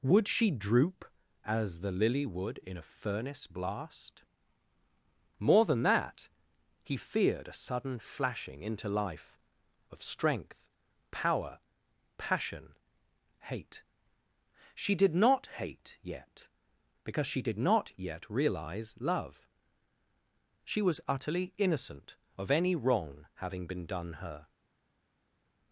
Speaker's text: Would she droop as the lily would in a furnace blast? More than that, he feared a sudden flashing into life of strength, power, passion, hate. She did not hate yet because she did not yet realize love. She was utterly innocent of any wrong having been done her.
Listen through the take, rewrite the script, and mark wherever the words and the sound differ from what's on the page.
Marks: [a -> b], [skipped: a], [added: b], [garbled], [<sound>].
Would she droop as the lily would in a furnace blast? More than that, he feared a sudden flashing into life of strength, power, passion, hate. She did not hate yet because she did not yet realize love. She was utterly innocent of any wrong having been done her.